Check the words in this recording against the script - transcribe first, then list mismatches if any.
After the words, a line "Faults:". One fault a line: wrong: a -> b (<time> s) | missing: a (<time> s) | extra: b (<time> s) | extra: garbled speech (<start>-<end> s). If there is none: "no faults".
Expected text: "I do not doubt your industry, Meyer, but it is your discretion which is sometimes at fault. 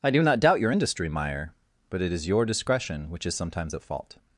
"I do not doubt your industry, Meyer, but it is your discretion which is sometimes at fault.
Faults:
no faults